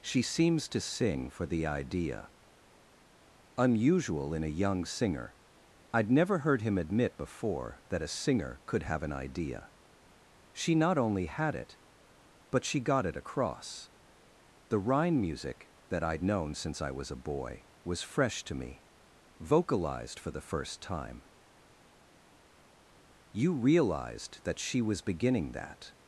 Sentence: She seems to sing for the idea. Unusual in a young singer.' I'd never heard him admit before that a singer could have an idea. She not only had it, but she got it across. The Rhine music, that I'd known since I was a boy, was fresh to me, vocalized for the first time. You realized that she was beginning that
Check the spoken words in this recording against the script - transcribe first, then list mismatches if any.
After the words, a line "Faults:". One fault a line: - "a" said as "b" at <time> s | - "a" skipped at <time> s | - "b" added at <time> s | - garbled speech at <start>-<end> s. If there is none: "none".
She seems to sing for the idea. Unusual in a young singer.' I'd never heard him admit before that a singer could have an idea. She not only had it, but she got it across. The Rhine music, that I'd known since I was a boy, was fresh to me, vocalized for the first time. You realized that she was beginning that
Faults:
none